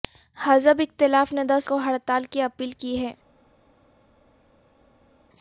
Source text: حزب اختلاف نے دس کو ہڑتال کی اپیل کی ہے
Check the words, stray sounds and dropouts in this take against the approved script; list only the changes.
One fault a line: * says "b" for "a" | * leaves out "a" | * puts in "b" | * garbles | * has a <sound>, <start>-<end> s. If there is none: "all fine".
all fine